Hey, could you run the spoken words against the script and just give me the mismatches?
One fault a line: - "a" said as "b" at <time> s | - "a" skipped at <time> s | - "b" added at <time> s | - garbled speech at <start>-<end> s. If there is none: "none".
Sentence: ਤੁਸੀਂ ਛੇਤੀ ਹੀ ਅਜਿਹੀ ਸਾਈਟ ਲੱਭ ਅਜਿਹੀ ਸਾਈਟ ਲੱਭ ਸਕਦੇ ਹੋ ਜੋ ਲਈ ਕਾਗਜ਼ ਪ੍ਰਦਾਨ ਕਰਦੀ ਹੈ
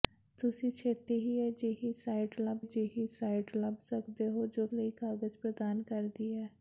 none